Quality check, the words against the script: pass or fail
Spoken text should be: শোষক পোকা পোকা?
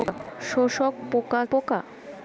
pass